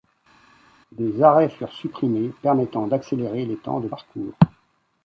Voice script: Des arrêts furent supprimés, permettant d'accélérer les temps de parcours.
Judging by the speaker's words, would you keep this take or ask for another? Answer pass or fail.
pass